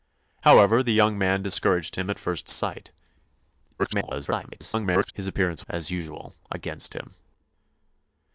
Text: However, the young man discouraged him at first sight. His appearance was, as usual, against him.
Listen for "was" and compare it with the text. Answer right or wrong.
wrong